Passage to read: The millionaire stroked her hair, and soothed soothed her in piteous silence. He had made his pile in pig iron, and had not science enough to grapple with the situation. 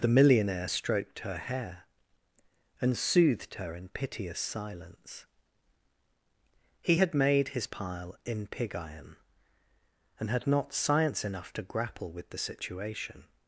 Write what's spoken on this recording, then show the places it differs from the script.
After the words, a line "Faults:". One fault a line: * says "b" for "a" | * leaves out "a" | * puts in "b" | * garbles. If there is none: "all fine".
The millionaire stroked her hair, and soothed her in piteous silence. He had made his pile in pig iron, and had not science enough to grapple with the situation.
Faults:
* leaves out "soothed"